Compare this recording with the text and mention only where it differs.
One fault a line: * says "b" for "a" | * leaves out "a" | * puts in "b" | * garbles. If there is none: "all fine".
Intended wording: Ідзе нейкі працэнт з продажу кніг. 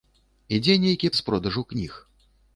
* leaves out "працэнт"